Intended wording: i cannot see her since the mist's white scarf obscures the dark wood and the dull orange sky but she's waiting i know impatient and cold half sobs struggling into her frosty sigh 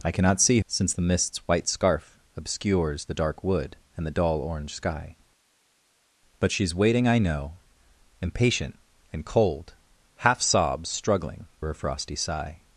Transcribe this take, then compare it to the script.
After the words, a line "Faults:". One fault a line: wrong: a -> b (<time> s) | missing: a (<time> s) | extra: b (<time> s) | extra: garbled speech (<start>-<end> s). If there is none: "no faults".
i cannot see since the mist's white scarf obscures the dark wood and the dull orange sky but she's waiting i know impatient and cold half sobs struggling her frosty sigh
Faults:
missing: her (0.6 s)
missing: into (11.5 s)